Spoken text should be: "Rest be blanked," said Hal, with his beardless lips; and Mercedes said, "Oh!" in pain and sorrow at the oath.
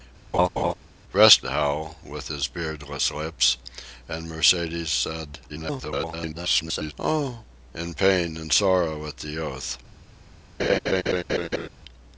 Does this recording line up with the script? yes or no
no